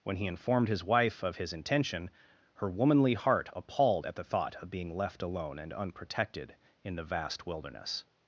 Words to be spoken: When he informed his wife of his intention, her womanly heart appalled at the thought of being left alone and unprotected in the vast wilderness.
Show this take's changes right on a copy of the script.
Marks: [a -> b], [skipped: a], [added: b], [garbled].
When he informed his wife of his intention, her womanly heart appalled at the thought of being left alone and unprotected in the vast wilderness.